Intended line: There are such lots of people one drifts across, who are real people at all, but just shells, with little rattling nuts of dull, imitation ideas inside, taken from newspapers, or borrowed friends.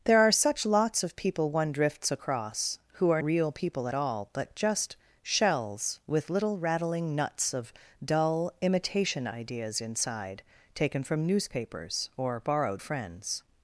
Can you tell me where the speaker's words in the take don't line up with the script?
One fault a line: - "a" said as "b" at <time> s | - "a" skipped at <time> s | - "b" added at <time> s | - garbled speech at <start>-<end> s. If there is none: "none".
none